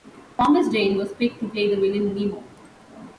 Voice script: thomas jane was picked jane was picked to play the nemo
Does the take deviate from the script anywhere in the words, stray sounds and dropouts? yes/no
yes